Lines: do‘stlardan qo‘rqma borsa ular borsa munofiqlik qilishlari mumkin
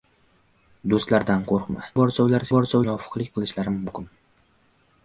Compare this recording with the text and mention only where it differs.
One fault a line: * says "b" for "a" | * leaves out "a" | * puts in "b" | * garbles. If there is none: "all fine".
all fine